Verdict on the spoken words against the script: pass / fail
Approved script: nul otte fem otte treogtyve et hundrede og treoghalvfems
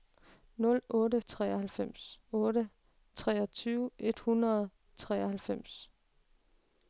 fail